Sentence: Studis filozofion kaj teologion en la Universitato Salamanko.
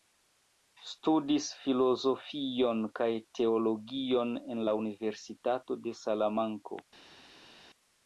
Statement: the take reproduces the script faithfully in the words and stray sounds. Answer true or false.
false